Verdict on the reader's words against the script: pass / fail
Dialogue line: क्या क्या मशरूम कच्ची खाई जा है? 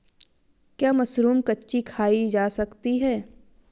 fail